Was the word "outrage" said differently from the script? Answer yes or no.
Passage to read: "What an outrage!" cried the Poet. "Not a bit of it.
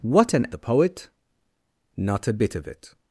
yes